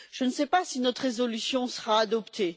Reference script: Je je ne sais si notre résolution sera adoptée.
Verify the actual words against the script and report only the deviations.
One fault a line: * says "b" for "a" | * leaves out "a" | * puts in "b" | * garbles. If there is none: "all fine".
* leaves out "je"
* puts in "pas"